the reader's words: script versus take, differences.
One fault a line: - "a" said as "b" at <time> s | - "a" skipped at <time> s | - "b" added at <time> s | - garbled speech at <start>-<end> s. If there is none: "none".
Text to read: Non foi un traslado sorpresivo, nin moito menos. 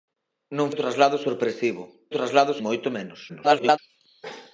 - "foi" skipped at 0.7 s
- "nin" said as "traslado" at 2.2 s
- garbled speech at 3.3-3.8 s